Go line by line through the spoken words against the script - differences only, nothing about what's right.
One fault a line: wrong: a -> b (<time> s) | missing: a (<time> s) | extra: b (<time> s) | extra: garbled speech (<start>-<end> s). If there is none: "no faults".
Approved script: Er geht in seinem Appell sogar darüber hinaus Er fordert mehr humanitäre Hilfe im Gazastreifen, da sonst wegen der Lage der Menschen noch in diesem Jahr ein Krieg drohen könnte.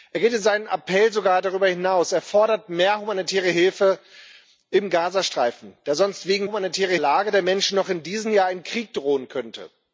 wrong: der -> humanitäre (6.4 s)